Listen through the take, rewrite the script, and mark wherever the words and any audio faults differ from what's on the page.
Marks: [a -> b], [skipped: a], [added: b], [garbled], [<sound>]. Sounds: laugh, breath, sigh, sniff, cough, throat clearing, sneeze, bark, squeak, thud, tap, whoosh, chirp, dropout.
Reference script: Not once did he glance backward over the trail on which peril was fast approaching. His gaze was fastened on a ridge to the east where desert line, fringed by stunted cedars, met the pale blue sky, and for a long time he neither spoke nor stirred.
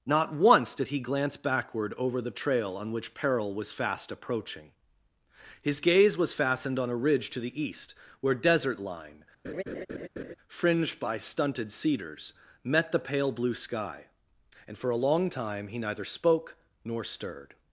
Not once did he glance backward over the trail on which peril was fast approaching. His gaze was fastened on a ridge to the east where desert line, [laugh] fringed by stunted cedars, met the pale blue sky, and for a long time he neither spoke nor stirred.